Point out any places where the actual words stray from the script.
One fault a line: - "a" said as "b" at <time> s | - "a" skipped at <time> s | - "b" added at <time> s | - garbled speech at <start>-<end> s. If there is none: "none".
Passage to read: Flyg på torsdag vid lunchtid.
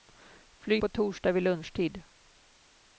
none